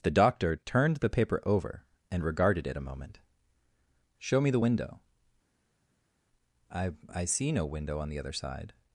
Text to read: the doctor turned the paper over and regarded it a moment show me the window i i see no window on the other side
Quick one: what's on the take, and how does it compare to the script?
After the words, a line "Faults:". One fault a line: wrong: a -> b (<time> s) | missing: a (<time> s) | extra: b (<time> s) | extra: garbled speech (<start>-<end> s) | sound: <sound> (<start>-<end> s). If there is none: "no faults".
the doctor turned the paper over and regarded it a moment show me the window i i see no window on the other side
Faults:
no faults